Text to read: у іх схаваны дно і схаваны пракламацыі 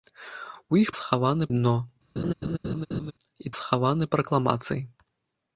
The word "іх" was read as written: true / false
true